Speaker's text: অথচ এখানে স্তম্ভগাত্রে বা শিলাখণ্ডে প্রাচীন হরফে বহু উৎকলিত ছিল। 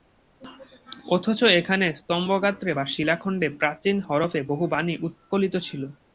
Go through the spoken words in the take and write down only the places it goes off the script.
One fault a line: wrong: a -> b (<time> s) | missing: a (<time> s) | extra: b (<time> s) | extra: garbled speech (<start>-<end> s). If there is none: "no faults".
extra: বাণী (4.7 s)